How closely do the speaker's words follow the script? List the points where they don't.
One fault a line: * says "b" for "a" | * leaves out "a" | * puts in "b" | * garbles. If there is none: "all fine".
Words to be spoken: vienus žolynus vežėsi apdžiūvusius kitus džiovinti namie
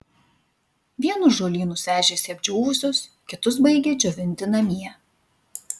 * puts in "baigė"